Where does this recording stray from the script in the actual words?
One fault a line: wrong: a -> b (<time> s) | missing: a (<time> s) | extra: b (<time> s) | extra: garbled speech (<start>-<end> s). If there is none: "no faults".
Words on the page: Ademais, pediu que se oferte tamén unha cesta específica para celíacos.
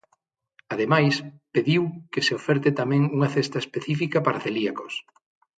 no faults